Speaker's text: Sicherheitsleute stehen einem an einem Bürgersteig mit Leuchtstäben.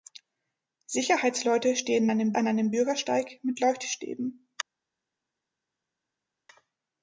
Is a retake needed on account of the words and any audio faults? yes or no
no